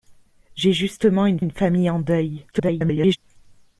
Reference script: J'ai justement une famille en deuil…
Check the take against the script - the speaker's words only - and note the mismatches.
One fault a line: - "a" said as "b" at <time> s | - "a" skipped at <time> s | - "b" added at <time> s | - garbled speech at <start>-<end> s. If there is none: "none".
- "une" added at 1.4 s
- garbled speech at 2.5-3.2 s